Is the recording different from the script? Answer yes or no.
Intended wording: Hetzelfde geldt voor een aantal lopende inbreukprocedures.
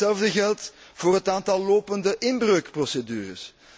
yes